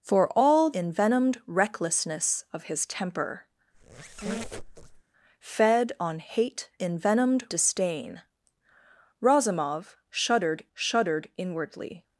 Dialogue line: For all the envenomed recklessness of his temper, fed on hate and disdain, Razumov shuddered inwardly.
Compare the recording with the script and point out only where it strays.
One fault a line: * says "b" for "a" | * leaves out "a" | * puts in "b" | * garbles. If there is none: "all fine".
* leaves out "the"
* says "envenomed" for "and"
* puts in "shuddered"